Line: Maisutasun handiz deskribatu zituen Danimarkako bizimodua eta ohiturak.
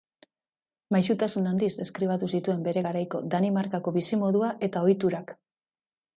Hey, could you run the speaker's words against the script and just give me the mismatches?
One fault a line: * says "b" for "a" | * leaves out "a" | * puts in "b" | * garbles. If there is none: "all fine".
* puts in "bere garaiko"